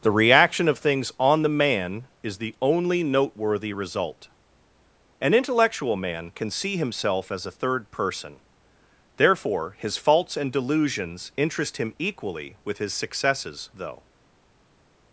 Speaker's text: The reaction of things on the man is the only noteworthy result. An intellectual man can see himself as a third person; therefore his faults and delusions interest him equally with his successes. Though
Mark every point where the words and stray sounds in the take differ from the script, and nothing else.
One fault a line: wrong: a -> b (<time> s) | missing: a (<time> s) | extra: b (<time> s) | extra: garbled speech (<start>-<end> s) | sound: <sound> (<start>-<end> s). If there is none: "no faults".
no faults